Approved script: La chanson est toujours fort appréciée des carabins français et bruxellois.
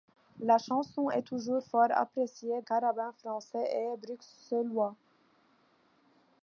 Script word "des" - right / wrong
wrong